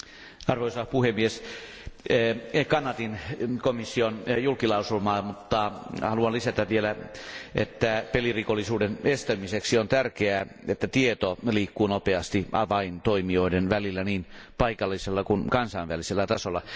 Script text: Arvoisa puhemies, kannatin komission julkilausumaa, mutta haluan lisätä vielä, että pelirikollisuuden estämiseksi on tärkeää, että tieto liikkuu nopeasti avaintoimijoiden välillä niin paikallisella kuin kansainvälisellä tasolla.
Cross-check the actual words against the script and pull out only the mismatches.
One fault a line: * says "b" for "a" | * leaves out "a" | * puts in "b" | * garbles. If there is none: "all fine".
all fine